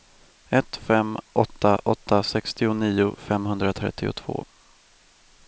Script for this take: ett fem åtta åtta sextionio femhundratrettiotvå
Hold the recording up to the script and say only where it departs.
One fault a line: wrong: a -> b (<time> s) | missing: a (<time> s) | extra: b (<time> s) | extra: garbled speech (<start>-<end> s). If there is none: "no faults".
no faults